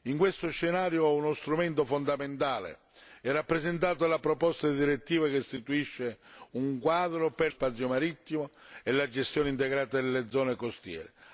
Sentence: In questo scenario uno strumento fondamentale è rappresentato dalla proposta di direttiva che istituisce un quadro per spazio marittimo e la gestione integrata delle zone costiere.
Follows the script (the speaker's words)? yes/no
yes